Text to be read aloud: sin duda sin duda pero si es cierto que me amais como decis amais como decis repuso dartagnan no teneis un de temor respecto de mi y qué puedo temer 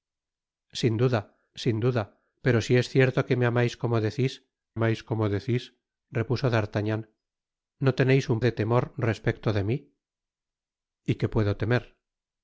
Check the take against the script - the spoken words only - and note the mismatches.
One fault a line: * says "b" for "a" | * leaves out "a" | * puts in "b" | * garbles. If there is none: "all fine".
all fine